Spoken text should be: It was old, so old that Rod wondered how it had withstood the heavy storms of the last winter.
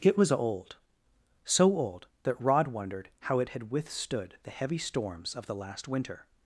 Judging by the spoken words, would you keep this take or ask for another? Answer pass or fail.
pass